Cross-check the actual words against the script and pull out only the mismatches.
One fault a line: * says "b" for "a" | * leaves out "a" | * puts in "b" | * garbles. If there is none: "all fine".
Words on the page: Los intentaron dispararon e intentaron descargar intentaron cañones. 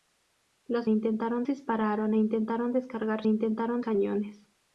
all fine